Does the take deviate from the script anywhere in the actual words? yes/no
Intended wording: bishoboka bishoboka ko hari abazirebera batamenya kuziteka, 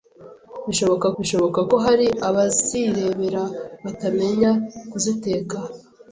no